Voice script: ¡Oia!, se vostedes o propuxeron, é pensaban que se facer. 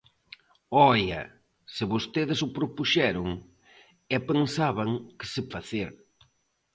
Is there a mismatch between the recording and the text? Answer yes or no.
no